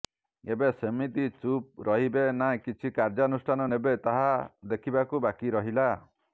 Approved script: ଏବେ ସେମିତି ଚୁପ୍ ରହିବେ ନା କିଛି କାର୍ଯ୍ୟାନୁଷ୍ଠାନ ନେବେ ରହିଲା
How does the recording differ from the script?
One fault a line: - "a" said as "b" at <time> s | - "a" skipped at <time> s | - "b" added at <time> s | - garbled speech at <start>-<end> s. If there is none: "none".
- "ତାହା ଦେଖିବାକୁ ବାକି" added at 4.1 s